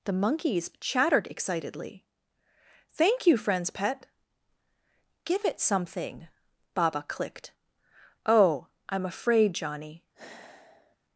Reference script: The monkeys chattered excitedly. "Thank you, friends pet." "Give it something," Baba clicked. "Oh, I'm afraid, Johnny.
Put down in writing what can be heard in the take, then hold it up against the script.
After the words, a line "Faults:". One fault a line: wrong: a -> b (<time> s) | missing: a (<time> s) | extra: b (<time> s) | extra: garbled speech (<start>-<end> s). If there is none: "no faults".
The monkeys chattered excitedly. "Thank you, friends pet." "Give it something," Baba clicked. "Oh, I'm afraid, Johnny.
Faults:
no faults